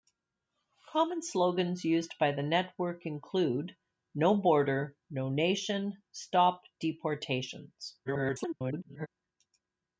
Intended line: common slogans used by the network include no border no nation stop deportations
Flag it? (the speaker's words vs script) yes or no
yes